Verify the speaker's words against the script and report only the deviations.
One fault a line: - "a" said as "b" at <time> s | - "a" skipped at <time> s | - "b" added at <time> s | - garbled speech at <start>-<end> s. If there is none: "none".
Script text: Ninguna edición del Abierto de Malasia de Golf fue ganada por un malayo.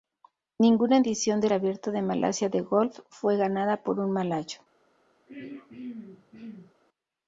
none